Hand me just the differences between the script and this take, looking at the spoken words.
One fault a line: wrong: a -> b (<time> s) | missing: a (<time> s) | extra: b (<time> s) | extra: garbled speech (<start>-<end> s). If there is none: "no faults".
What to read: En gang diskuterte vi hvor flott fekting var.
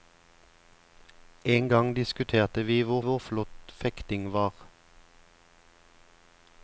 extra: hvor (3.0 s)